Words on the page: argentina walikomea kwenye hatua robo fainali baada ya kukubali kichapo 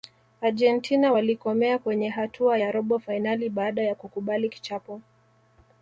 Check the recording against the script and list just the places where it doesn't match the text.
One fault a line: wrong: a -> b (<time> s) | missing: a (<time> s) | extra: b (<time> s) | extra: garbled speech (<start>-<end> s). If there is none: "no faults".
extra: ya (2.6 s)